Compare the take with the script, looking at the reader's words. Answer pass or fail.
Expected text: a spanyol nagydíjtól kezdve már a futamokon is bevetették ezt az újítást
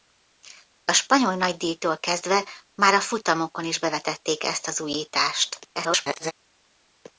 fail